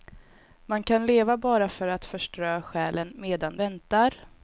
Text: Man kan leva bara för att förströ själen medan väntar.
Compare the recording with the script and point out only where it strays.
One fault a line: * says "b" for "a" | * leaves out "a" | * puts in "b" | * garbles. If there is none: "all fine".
all fine